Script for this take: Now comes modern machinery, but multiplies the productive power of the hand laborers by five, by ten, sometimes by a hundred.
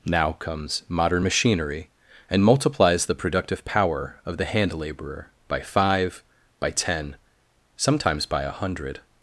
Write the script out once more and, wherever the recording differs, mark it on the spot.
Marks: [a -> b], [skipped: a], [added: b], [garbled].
Now comes modern machinery, [but -> and] multiplies the productive power of the hand [laborers -> laborer] by five, by ten, sometimes by a hundred.